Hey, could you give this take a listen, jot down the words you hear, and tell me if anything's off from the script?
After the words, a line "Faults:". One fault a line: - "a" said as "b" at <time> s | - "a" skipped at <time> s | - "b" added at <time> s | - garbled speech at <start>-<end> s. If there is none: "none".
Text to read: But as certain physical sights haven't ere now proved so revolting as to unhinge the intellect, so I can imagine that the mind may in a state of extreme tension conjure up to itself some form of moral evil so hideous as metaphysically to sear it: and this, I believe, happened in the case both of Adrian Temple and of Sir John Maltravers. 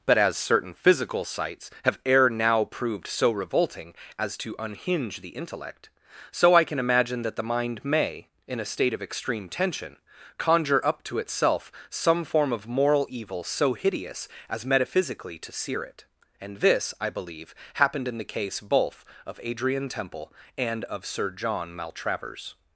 But as certain physical sights have ere now proved so revolting as to unhinge the intellect, so I can imagine that the mind may in a state of extreme tension conjure up to itself some form of moral evil so hideous as metaphysically to sear it: and this, I believe, happened in the case both of Adrian Temple and of Sir John Maltravers.
Faults:
- "haven't" said as "have" at 1.8 s